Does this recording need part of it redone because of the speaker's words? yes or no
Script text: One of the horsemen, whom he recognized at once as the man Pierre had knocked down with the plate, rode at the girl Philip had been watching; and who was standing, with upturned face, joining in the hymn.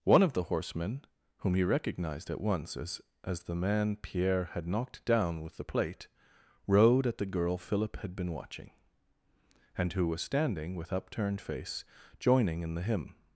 yes